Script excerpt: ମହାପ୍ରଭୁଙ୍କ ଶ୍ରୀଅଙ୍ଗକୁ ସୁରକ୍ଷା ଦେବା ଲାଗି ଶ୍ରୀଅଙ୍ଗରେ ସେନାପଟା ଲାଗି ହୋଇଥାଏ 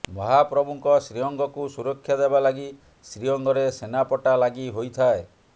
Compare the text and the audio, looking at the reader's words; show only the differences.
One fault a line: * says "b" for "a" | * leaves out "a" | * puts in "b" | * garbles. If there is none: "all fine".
all fine